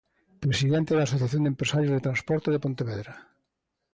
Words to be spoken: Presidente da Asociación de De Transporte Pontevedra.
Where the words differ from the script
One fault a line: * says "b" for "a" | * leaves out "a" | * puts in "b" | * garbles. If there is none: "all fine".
* puts in "Empresarios"
* puts in "de"